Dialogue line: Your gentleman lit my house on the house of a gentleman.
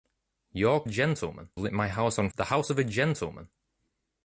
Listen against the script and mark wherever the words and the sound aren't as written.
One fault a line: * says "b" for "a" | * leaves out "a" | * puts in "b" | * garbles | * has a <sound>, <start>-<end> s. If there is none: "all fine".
all fine